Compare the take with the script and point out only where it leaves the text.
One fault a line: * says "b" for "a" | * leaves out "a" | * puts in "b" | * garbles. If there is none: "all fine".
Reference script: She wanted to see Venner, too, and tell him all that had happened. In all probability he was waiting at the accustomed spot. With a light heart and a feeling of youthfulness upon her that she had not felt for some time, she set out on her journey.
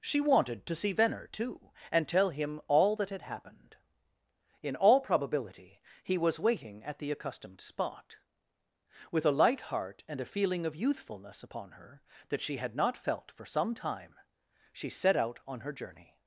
all fine